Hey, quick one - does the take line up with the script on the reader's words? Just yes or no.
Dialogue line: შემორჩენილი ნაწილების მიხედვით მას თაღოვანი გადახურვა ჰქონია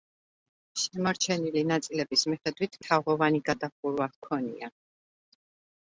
no